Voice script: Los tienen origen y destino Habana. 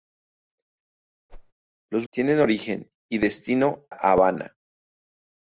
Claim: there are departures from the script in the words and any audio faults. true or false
true